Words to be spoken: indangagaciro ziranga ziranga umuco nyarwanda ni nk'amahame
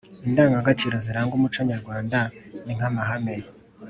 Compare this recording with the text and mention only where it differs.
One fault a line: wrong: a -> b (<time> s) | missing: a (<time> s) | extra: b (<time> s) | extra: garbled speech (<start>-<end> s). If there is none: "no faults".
missing: ziranga (1.3 s)